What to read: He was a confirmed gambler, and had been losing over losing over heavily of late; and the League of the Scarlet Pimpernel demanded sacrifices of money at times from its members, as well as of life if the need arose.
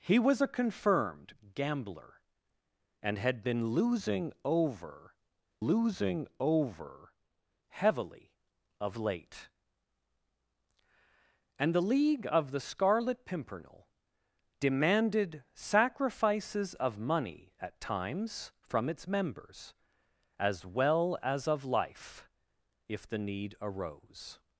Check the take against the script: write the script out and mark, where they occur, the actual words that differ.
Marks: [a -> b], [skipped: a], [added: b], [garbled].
He was a confirmed gambler, and had been losing over losing over heavily of late; and the League of the Scarlet Pimpernel demanded sacrifices of money at times from its members, as well as of life if the need arose.